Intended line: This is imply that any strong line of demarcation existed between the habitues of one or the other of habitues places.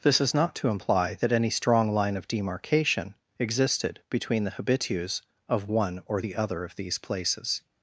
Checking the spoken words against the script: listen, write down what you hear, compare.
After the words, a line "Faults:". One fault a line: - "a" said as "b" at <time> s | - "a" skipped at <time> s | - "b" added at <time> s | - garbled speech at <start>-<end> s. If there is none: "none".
This is not to imply that any strong line of demarcation existed between the habitues of one or the other of these places.
Faults:
- "not to" added at 0.3 s
- "habitues" said as "these" at 6.8 s